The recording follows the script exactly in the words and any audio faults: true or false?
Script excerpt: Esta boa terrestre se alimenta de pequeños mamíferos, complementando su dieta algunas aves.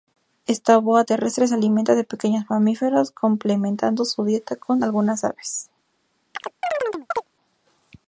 false